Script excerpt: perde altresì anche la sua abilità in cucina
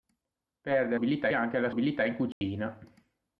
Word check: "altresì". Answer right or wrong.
wrong